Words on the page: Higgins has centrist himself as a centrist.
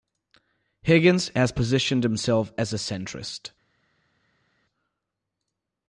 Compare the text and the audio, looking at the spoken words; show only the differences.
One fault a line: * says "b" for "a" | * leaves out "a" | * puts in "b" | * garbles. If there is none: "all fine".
* says "positioned" for "centrist"